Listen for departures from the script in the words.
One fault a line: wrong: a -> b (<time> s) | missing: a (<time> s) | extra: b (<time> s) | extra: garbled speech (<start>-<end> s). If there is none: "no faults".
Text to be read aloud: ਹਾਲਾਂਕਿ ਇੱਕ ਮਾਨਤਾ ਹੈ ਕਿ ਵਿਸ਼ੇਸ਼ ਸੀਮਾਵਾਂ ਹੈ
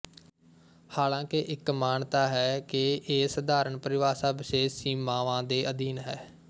extra: ਇਹ ਸਧਾਰਨ ਪਰਿਭਾਸ਼ਾ (3.1 s)
extra: ਦੇ ਅਧੀਨ (5.4 s)